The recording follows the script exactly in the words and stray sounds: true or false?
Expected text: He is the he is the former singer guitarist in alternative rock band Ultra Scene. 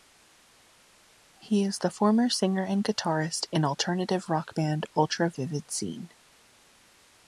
false